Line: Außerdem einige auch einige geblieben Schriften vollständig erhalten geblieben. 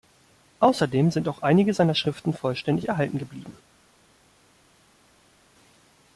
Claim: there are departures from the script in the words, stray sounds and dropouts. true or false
true